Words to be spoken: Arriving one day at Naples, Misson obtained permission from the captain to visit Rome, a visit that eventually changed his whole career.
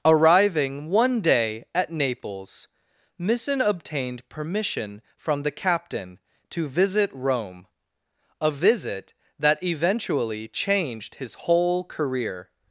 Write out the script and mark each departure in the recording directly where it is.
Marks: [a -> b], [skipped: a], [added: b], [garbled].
Arriving one day at Naples, Misson obtained permission from the captain to visit Rome, a visit that eventually changed his whole career.